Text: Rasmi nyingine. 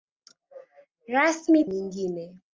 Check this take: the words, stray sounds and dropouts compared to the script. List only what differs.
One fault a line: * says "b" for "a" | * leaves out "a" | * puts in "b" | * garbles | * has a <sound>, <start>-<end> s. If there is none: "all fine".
all fine